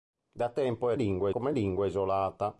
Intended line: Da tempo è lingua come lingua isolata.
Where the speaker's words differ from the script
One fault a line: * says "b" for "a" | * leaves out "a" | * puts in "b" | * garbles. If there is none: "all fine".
all fine